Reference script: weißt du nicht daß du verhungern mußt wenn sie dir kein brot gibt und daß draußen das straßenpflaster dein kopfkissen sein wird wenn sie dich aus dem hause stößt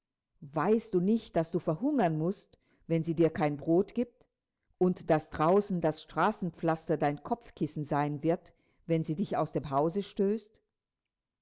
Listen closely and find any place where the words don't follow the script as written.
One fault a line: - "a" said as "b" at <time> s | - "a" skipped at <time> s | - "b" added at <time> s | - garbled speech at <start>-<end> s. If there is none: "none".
none